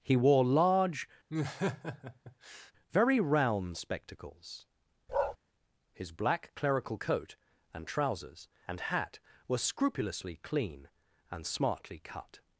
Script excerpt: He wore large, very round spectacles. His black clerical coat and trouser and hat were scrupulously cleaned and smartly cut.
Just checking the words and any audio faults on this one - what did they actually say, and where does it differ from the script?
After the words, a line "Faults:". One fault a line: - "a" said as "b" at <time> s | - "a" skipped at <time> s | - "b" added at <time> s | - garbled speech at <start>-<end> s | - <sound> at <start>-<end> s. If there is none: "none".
He wore large, very round spectacles. His black clerical coat and trousers and hat were scrupulously clean and smartly cut.
Faults:
- laugh at 1.3-2.7 s
- bark at 5.1-5.4 s
- "trouser" said as "trousers" at 7.9 s
- "cleaned" said as "clean" at 10.4 s